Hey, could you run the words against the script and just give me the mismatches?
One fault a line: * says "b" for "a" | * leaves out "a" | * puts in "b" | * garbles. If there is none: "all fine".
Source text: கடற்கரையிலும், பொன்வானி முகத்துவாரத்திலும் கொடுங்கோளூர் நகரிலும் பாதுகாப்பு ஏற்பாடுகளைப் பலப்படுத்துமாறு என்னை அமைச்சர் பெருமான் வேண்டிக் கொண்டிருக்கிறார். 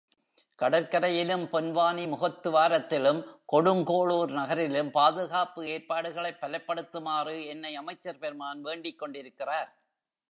all fine